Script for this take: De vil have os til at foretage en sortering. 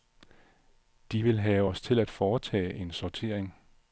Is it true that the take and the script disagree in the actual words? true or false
false